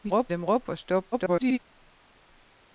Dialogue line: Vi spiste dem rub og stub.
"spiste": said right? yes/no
no